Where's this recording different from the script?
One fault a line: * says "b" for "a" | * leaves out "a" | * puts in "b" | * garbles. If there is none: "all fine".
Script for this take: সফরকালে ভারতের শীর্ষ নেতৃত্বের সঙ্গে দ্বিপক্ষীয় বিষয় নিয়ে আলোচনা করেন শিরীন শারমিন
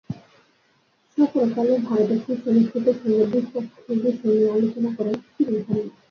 all fine